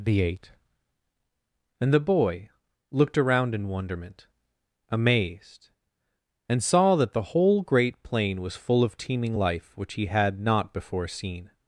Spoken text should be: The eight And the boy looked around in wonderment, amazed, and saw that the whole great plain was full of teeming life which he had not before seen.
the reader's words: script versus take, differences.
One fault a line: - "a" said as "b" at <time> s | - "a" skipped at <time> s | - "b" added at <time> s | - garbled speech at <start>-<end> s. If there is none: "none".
none